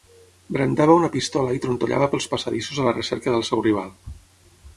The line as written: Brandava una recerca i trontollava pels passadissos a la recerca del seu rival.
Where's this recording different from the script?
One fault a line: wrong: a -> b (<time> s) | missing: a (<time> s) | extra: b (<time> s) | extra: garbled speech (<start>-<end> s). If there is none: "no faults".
wrong: recerca -> pistola (1.1 s)